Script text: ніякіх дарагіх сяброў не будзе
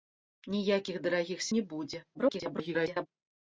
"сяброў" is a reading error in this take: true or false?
true